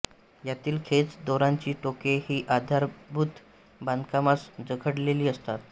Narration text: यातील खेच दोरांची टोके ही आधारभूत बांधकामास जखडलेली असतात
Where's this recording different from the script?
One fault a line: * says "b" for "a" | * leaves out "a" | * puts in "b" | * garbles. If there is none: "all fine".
all fine